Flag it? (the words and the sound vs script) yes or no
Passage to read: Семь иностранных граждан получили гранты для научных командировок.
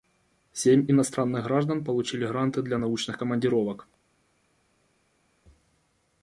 no